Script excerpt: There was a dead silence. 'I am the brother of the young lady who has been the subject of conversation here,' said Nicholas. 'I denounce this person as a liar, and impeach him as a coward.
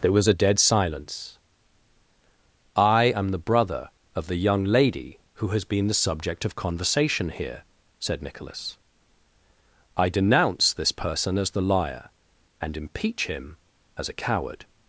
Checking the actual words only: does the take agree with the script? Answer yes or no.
no